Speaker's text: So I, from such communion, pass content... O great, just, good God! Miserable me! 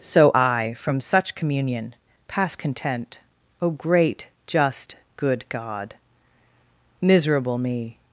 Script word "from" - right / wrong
right